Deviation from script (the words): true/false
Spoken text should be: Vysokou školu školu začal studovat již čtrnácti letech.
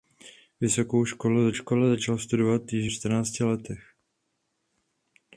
false